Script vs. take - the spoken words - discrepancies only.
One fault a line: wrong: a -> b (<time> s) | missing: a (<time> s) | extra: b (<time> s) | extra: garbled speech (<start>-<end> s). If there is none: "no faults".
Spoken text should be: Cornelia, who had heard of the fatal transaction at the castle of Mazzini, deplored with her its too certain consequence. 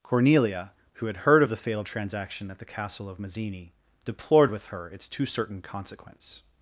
no faults